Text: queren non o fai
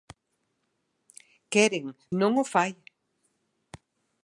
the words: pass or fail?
pass